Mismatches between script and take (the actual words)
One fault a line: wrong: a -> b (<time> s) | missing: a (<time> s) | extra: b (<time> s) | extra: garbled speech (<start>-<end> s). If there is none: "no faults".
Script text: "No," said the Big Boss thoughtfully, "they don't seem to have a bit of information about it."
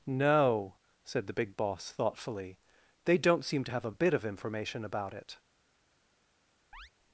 no faults